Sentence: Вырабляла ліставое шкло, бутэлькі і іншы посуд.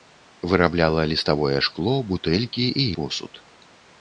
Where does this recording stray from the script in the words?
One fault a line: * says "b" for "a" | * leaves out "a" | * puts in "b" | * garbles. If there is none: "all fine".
* leaves out "іншы"